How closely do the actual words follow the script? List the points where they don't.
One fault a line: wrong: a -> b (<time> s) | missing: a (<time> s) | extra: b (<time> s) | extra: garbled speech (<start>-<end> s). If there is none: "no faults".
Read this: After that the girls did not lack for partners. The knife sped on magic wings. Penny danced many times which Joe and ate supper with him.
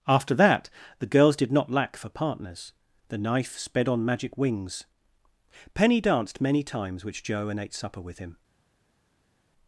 no faults